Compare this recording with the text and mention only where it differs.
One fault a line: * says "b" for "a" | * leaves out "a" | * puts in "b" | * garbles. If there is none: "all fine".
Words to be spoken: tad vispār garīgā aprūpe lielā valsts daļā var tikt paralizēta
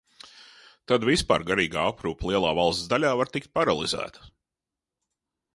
all fine